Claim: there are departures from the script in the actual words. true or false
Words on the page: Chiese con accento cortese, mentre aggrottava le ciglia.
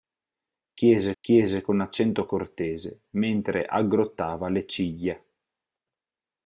true